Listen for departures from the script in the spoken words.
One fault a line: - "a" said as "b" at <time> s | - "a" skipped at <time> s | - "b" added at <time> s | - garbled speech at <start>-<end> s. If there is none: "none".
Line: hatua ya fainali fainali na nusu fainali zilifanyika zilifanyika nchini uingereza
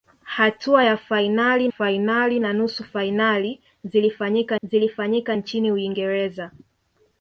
none